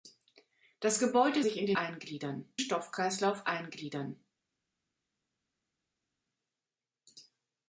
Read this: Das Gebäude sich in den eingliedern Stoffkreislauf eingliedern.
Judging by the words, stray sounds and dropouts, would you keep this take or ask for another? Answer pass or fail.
pass